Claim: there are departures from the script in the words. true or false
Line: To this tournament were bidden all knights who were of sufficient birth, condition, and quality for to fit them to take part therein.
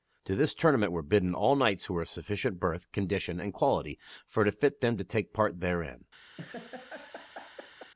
false